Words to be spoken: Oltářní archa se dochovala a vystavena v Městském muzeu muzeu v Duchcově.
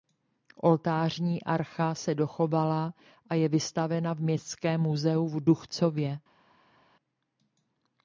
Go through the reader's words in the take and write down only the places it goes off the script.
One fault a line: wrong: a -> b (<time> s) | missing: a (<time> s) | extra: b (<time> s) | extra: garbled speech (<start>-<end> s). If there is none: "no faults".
extra: je (3.4 s)
missing: muzeu (5.3 s)